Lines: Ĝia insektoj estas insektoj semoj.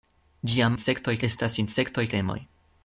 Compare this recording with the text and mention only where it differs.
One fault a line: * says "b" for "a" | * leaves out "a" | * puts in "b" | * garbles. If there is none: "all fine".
all fine